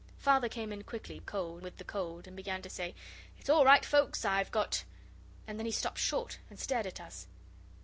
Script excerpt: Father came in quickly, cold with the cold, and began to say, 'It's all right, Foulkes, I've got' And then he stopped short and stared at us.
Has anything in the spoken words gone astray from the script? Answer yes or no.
no